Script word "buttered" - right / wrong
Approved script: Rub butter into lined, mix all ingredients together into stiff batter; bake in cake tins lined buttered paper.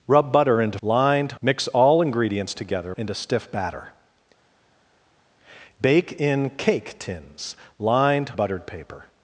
right